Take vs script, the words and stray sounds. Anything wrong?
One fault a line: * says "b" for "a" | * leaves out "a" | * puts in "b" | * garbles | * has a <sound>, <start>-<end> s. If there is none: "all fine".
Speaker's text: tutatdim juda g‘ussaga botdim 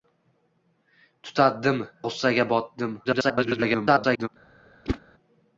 * leaves out "juda"
* garbles
* has a whoosh, 4.8-5.0 s